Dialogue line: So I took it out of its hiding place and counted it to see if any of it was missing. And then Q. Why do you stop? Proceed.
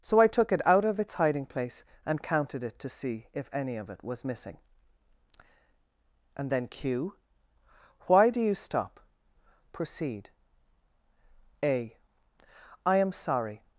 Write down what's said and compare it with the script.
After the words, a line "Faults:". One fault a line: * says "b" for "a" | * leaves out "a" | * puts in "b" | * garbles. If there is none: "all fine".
So I took it out of its hiding place and counted it to see if any of it was missing. And then Q. Why do you stop? Proceed. A. I am sorry
Faults:
* puts in "A I am sorry"